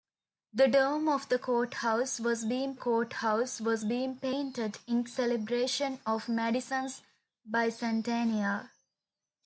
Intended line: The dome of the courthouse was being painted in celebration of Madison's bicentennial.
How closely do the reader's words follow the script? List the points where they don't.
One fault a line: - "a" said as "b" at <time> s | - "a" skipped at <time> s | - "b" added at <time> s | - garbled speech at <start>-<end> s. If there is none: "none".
- "courthouse was being" added at 2.7 s